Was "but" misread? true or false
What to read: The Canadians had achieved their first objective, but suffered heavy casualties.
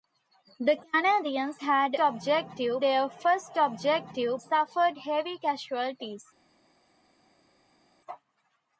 true